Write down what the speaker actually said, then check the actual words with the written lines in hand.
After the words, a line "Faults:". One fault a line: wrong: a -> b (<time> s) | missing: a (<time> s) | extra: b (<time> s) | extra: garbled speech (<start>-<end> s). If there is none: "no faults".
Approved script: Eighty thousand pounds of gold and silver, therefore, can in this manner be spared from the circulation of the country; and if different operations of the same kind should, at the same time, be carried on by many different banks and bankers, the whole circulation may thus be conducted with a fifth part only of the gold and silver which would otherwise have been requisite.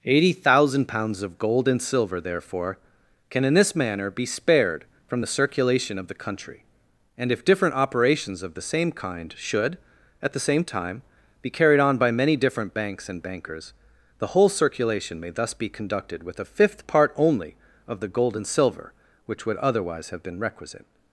Eighty thousand pounds of gold and silver, therefore, can in this manner be spared from the circulation of the country; and if different operations of the same kind should, at the same time, be carried on by many different banks and bankers, the whole circulation may thus be conducted with a fifth part only of the gold and silver which would otherwise have been requisite.
Faults:
no faults